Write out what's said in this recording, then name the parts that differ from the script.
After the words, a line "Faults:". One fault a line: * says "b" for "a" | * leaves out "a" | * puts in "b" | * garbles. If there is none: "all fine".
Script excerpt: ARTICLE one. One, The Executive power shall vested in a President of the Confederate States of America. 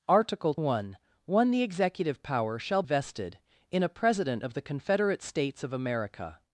ARTICLE one. One, The Executive power shall vested in a President of the Confederate States of America.
Faults:
all fine